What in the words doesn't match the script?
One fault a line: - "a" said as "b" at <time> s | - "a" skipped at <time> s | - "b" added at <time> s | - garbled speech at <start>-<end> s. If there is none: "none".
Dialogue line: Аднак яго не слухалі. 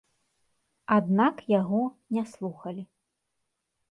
none